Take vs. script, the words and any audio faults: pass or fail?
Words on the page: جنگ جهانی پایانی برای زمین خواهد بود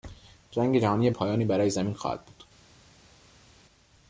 pass